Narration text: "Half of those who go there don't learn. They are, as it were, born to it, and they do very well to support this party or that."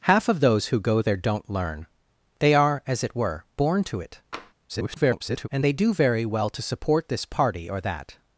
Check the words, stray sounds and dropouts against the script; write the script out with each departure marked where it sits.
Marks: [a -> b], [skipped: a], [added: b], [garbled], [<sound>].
"Half of those who go there don't learn. They are, as it were, born to it, [tap] [garbled] and they do very well to support this party or that."